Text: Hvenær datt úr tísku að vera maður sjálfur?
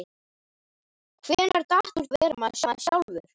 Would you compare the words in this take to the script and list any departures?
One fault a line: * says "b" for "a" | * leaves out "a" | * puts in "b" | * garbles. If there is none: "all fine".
* leaves out "tísku"
* puts in "maður"